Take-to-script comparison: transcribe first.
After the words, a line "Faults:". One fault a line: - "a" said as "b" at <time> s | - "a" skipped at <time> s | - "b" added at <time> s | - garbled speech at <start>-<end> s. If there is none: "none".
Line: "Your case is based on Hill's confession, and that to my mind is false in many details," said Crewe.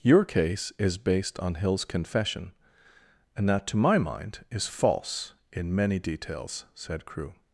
"Your case is based on Hill's confession, and that to my mind is false in many details," said Crewe.
Faults:
none